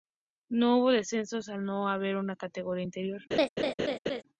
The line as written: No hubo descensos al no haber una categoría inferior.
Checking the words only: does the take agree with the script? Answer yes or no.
yes